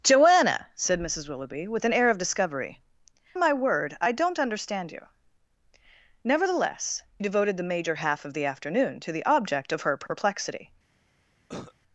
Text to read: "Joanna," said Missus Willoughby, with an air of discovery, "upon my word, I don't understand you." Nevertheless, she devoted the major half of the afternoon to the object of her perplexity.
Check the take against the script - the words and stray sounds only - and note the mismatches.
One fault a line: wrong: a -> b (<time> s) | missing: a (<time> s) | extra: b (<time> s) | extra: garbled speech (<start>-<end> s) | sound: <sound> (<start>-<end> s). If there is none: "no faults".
missing: upon (2.8 s)
missing: she (7.0 s)
sound: cough (11.5-11.7 s)